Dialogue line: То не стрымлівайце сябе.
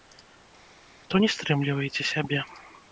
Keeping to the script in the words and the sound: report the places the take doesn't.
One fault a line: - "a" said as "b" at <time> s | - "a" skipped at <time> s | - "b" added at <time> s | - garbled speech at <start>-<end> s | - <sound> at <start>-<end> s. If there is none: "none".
none